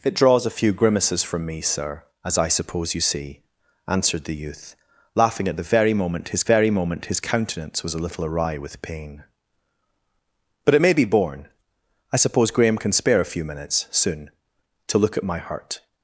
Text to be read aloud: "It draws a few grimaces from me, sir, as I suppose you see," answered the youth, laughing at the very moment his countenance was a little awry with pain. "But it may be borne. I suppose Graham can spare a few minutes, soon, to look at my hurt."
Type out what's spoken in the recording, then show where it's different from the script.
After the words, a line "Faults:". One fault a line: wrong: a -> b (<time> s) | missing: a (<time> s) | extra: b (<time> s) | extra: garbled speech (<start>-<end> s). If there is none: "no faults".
"It draws a few grimaces from me, sir, as I suppose you see," answered the youth, laughing at the very moment his very moment his countenance was a little awry with pain. "But it may be borne. I suppose Graham can spare a few minutes, soon, to look at my hurt."
Faults:
extra: very moment his (6.5 s)